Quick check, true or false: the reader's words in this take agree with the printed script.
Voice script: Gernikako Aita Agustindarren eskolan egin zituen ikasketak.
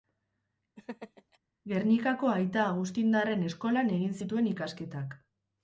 true